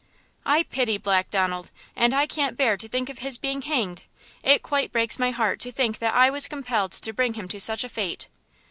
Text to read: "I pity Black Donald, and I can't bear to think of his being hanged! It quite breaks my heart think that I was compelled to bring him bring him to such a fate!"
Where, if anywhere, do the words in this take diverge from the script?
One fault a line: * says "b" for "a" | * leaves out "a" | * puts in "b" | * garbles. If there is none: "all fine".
* puts in "to"
* leaves out "bring him"